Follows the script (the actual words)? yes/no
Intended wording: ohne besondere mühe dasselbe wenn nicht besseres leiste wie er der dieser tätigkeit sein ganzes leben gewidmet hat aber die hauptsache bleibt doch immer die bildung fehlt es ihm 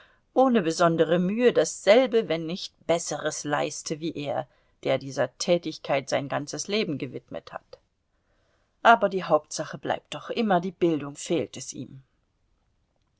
yes